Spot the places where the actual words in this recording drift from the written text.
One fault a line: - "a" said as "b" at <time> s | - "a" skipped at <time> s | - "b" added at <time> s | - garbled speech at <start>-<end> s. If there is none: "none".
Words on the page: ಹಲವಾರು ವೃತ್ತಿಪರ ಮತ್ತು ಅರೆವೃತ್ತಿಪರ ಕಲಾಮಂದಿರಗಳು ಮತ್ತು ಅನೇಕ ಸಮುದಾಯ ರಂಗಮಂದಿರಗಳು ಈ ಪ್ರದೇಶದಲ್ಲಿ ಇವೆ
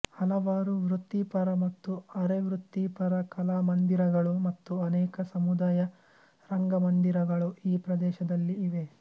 none